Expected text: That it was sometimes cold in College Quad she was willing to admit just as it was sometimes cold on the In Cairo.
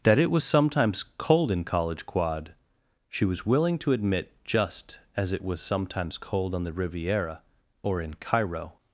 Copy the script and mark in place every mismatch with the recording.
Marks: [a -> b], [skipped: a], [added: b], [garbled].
That it was sometimes cold in College Quad she was willing to admit just as it was sometimes cold on the [added: Riviera or] In Cairo.